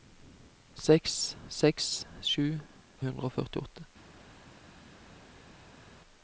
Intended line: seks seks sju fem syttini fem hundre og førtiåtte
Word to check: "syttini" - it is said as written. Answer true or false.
false